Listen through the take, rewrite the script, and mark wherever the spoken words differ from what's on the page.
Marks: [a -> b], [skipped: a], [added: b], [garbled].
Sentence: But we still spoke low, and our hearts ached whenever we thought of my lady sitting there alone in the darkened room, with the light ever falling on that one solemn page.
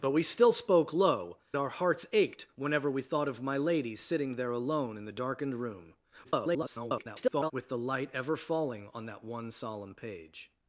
But we still spoke low, [skipped: and] our hearts ached whenever we thought of my lady sitting there alone in the darkened room, [garbled] with the light ever falling on that one solemn page.